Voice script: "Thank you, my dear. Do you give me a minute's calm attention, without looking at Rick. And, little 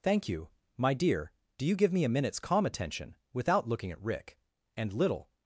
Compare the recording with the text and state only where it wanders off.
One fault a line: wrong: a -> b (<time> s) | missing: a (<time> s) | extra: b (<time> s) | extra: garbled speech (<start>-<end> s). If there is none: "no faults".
no faults